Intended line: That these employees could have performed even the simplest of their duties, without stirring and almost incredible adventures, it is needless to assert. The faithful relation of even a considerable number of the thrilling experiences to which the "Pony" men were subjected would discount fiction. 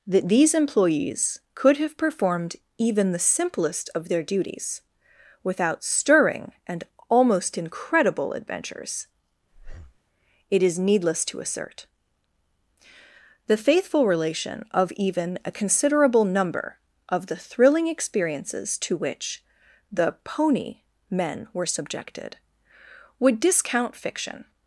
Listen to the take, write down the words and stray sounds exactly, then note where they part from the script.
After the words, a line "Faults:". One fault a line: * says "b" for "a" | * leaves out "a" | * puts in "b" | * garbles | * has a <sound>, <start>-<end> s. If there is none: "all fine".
That these employees could have performed even the simplest of their duties, without stirring and almost incredible adventures, it is needless to assert. The faithful relation of even a considerable number of the thrilling experiences to which the "Pony" men were subjected would discount fiction.
Faults:
* has a breath, 9.5-10.0 s